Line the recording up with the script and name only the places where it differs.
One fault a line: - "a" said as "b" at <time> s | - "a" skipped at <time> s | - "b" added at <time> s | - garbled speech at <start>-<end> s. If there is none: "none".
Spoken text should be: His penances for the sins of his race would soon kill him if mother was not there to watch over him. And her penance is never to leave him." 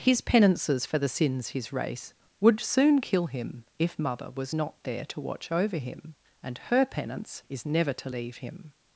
- "of" skipped at 1.5 s